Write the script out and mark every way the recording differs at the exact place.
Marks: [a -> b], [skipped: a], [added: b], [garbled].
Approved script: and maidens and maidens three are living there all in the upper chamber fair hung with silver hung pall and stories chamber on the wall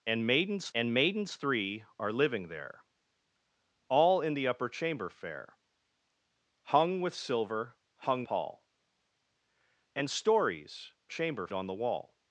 and maidens and maidens three are living there all in the upper chamber fair hung with silver hung pall and stories chamber on the wall